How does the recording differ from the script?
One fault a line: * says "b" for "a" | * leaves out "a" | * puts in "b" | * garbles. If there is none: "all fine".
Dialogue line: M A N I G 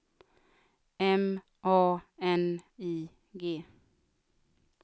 all fine